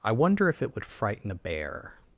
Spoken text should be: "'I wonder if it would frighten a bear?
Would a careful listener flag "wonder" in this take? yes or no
no